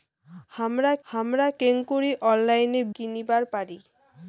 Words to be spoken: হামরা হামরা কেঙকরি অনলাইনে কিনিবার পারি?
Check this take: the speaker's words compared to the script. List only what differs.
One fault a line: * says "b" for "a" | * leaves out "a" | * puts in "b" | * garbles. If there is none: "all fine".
all fine